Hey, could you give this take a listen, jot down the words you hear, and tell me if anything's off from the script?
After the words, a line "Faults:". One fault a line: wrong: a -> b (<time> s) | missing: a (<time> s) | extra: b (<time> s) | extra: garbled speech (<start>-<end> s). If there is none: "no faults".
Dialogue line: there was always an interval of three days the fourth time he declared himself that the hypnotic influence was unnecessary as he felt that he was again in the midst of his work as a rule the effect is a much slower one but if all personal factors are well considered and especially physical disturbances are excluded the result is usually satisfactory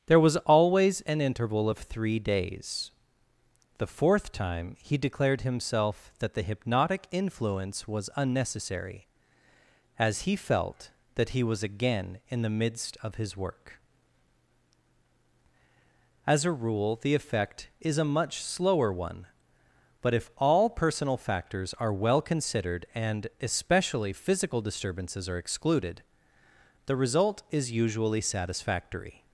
there was always an interval of three days the fourth time he declared himself that the hypnotic influence was unnecessary as he felt that he was again in the midst of his work as a rule the effect is a much slower one but if all personal factors are well considered and especially physical disturbances are excluded the result is usually satisfactory
Faults:
no faults